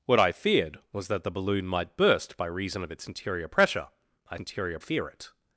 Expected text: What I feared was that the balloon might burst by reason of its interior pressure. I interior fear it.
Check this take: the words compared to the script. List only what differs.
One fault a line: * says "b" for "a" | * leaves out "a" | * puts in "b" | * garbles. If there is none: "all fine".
all fine